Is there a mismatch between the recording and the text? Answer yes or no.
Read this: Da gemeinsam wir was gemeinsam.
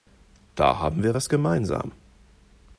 yes